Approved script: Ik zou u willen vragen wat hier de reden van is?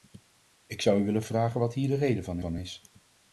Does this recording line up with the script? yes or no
no